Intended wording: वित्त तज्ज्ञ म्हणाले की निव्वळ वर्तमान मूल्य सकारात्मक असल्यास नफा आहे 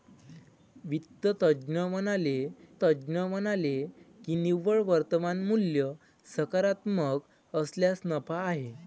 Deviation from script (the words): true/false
true